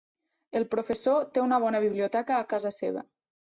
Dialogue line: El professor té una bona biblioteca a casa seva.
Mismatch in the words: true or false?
false